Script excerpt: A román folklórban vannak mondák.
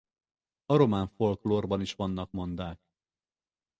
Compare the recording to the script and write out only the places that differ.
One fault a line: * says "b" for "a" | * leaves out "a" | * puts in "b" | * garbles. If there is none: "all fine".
* puts in "is"